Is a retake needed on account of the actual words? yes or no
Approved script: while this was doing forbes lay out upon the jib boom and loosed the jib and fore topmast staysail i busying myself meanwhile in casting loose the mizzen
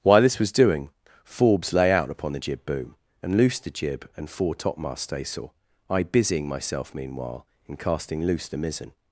no